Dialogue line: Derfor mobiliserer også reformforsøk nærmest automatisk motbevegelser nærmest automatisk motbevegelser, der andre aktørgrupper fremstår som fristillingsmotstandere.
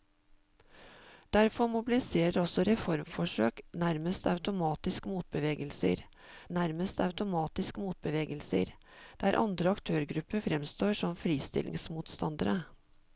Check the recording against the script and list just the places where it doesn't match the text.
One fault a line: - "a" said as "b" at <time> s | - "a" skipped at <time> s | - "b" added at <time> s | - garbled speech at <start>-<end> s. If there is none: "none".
none